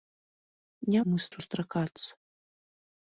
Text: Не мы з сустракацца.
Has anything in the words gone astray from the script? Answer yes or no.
no